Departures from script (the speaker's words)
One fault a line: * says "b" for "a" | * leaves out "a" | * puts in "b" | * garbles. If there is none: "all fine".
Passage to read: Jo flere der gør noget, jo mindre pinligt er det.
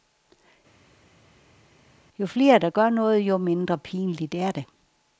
all fine